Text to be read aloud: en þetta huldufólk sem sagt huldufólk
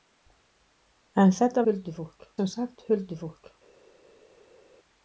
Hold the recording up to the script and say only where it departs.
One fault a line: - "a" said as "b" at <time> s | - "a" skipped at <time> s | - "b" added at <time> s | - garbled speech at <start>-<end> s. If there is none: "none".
none